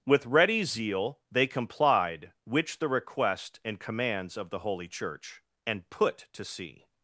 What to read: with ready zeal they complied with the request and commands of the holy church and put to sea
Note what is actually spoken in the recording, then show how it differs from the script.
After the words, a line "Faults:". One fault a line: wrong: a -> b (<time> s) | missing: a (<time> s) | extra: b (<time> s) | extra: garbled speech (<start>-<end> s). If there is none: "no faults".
with ready zeal they complied which the request and commands of the holy church and put to sea
Faults:
wrong: with -> which (2.5 s)